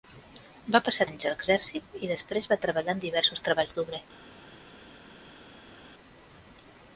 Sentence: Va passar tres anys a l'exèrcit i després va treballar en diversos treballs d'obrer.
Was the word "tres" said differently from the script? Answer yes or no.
yes